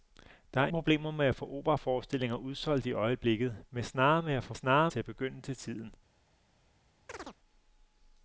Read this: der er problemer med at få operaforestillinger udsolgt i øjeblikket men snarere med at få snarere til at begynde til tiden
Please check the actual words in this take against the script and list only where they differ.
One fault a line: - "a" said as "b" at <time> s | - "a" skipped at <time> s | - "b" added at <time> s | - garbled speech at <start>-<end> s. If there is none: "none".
none